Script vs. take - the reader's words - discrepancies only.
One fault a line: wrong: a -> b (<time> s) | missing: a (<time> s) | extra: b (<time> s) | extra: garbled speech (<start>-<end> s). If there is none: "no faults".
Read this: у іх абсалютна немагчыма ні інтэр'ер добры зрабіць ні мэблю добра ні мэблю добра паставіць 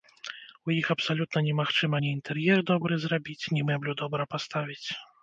missing: ні мэблю добра (4.3 s)